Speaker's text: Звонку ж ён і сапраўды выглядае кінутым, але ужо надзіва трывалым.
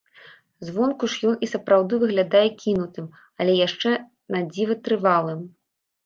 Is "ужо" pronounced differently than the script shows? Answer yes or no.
yes